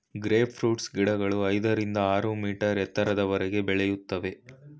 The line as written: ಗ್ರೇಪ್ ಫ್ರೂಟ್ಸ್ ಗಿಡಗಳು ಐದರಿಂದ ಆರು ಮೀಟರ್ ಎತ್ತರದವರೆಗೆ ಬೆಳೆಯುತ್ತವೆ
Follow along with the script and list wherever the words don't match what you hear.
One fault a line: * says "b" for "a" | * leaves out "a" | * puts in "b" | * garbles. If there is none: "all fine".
all fine